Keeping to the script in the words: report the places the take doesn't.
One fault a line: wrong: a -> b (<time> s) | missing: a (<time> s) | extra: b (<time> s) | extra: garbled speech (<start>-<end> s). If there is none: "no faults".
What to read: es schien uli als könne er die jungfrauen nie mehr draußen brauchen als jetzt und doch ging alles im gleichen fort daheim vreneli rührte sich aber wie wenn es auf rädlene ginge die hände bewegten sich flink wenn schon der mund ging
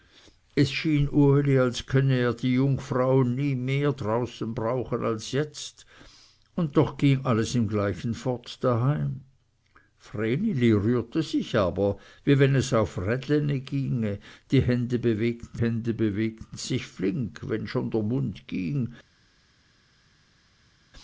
extra: hände bewegten (15.6 s)